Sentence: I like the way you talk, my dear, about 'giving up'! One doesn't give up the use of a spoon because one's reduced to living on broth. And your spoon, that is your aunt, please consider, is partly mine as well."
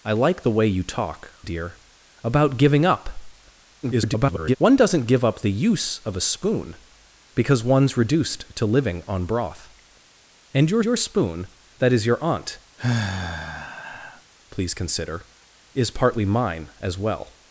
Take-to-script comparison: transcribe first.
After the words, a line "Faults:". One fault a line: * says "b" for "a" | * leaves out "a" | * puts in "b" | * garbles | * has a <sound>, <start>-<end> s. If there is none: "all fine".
I like the way you talk, dear, about 'giving up'! [garbled] One doesn't give up the use of a spoon because one's reduced to living on broth. And your your spoon, that is your aunt, please consider, is partly mine as well."
Faults:
* leaves out "my"
* garbles
* puts in "your"
* has a sigh, 12.8-14.2 s